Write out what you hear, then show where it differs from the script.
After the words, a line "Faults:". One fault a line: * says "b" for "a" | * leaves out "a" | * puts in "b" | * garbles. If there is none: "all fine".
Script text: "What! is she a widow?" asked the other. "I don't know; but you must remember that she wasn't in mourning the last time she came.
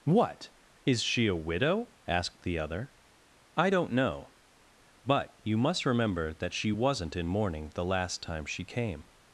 "What! is she a widow?" asked the other. "I don't know; but you must remember that she wasn't in mourning the last time she came.
Faults:
all fine